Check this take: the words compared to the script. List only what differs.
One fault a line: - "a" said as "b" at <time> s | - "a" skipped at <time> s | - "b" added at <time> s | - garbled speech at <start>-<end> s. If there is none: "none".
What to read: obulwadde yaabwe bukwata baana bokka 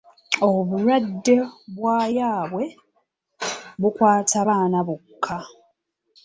- "bwa" added at 1.8 s